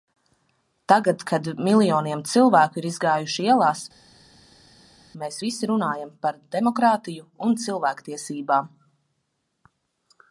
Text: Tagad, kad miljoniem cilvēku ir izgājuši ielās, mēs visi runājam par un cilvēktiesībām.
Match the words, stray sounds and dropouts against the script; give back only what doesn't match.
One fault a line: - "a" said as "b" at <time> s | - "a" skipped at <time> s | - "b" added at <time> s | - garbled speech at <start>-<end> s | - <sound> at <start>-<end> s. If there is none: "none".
- "demokrātiju" added at 6.6 s